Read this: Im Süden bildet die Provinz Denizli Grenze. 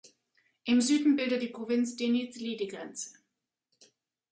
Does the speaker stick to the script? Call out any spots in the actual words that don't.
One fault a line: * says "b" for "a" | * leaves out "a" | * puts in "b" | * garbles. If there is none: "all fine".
* puts in "die"